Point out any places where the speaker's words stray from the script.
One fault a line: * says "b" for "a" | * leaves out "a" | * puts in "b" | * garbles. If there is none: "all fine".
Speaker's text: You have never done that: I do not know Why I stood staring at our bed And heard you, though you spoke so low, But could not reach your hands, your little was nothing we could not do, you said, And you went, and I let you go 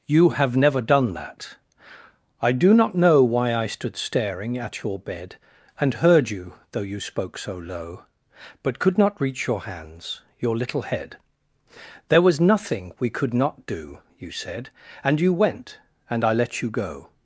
* says "your" for "our"
* puts in "head There"